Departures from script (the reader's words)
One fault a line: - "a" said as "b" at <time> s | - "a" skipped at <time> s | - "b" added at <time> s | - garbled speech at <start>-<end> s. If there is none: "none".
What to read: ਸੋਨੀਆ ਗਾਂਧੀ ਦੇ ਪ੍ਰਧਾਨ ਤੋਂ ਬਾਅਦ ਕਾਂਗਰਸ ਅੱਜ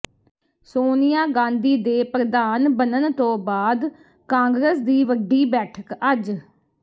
- "ਬਣਨ" added at 2.8 s
- "ਦੀ ਵੱਡੀ ਬੈਠਕ" added at 4.8 s